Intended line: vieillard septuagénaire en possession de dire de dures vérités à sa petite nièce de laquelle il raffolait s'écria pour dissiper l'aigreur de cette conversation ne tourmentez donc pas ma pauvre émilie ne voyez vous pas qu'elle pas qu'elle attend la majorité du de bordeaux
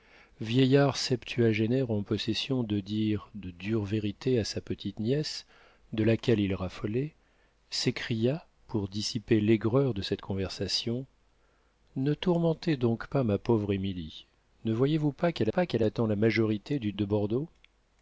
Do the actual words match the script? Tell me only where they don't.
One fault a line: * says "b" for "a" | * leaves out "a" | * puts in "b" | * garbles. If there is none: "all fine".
all fine